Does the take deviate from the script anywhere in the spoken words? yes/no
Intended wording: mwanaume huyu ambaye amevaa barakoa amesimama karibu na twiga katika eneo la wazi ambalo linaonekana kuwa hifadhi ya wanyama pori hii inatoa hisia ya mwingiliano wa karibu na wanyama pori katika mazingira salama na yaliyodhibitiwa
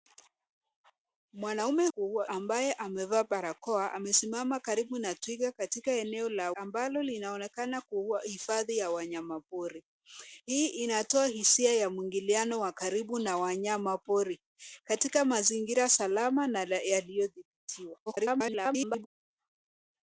yes